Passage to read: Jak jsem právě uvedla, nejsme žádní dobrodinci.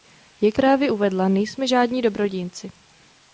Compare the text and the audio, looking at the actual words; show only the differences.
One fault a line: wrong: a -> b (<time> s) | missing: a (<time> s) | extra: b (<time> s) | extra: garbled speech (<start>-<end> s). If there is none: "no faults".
missing: jsem (0.6 s)